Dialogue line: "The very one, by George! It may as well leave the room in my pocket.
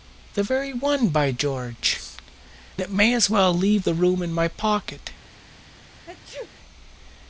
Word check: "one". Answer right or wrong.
right